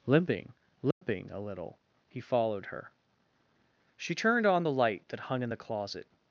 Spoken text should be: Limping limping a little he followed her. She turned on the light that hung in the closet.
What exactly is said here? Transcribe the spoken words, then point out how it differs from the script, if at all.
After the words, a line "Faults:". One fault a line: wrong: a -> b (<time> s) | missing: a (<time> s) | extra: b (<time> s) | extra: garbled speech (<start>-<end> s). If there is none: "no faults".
Limping limping a little he followed her. She turned on the light that hung in the closet.
Faults:
no faults